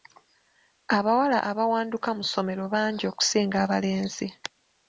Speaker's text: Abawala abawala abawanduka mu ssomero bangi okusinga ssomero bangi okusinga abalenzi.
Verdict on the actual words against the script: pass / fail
fail